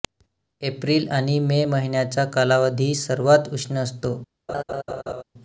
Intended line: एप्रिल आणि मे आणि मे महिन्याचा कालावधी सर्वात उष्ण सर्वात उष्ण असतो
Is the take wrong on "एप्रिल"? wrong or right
right